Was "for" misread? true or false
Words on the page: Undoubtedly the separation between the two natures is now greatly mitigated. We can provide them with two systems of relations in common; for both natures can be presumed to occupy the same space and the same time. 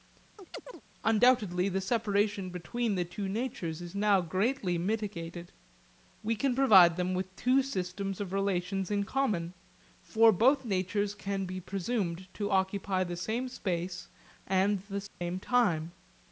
false